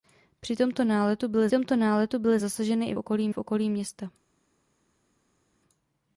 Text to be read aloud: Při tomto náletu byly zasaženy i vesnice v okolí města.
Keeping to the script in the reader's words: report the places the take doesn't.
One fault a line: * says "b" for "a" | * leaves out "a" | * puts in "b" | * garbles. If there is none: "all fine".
* puts in "tomto náletu byly"
* says "okolí" for "vesnice"